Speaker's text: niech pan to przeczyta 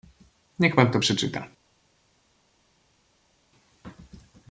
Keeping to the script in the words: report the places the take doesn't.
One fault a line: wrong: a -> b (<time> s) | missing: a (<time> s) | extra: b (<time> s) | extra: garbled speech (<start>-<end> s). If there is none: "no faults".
no faults